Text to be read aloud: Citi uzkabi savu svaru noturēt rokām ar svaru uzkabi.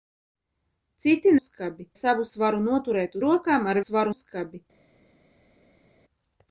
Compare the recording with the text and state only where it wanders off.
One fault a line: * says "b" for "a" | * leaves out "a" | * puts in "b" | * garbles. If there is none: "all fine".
all fine